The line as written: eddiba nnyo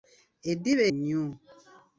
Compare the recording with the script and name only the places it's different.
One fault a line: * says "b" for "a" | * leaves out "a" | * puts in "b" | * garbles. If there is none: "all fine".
all fine